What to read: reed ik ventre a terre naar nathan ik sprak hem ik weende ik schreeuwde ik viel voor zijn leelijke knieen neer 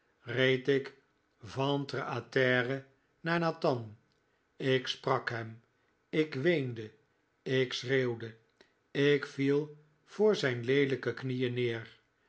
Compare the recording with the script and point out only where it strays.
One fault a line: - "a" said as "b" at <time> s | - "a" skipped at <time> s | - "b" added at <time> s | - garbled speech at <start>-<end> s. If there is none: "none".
none